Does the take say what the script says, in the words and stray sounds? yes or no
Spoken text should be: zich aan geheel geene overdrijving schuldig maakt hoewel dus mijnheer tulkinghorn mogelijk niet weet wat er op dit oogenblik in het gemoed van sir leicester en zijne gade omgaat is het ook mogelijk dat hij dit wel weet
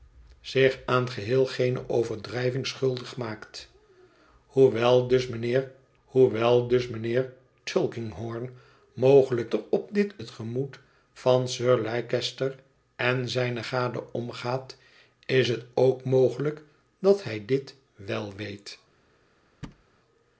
no